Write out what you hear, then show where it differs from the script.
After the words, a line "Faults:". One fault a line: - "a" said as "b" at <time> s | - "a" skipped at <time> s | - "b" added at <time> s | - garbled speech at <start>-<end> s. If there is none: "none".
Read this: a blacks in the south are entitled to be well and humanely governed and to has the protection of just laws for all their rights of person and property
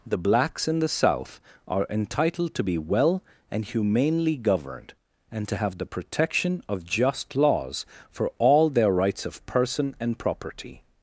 the blacks in the south are entitled to be well and humanely governed and to have the protection of just laws for all their rights of person and property
Faults:
- "a" said as "the" at 0.1 s
- "has" said as "have" at 5.5 s